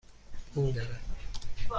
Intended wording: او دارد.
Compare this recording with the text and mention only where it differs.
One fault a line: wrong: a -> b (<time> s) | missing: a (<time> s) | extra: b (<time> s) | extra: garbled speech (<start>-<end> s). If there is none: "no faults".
no faults